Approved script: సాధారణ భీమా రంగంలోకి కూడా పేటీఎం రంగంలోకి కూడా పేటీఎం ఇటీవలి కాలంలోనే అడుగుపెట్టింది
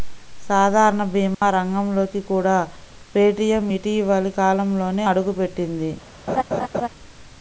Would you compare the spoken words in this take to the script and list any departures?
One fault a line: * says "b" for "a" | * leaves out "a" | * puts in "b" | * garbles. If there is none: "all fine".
* leaves out "రంగంలోకి కూడా పేటీఎం"